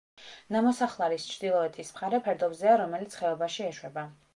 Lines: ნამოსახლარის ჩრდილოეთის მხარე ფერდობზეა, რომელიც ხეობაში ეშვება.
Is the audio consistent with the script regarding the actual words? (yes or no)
yes